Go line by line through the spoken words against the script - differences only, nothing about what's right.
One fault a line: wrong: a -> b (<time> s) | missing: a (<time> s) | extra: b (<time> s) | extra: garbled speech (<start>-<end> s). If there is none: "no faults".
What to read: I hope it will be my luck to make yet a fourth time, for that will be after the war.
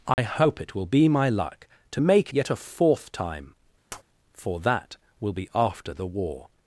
no faults